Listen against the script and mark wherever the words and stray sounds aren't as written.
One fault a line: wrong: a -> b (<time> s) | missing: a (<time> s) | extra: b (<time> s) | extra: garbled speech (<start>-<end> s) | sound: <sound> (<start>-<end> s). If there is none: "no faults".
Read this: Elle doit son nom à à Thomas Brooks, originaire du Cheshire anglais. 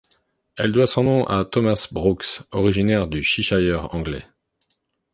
missing: à (1.5 s)